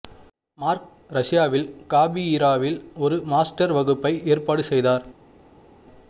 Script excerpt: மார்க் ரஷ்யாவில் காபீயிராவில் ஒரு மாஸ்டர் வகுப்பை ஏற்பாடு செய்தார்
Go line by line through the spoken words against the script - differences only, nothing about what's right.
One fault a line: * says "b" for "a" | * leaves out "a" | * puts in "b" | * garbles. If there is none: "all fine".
all fine